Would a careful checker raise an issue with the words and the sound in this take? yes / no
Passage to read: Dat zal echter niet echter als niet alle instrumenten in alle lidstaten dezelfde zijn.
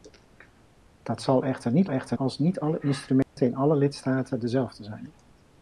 yes